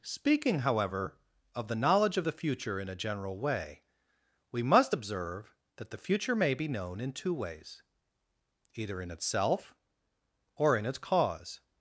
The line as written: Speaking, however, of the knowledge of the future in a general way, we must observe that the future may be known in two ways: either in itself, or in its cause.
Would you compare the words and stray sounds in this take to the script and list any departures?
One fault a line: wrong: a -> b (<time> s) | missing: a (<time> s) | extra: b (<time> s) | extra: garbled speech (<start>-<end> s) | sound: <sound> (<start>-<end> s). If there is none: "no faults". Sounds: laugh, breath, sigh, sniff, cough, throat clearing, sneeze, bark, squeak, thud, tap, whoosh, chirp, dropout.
no faults